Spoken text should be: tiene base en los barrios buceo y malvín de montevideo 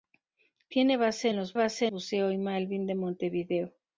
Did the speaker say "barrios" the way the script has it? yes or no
no